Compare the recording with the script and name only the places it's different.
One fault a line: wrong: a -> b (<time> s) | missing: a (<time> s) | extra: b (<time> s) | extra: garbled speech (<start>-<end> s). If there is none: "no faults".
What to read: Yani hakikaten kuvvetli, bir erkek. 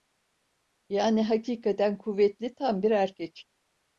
extra: tam (2.5 s)